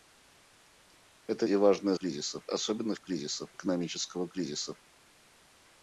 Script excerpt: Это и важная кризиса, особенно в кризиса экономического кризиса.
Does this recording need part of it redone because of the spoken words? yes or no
no